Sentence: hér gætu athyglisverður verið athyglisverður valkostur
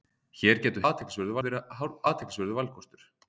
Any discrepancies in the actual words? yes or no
no